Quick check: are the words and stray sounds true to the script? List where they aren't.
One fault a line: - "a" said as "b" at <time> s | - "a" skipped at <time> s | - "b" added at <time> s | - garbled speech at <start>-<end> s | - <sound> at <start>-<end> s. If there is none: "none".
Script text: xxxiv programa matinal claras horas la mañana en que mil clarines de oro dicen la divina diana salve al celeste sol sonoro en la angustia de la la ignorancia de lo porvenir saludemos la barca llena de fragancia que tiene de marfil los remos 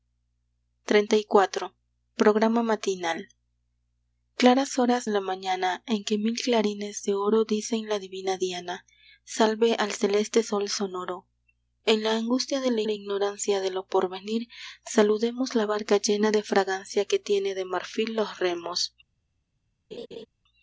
- laugh at 19.9-20.3 s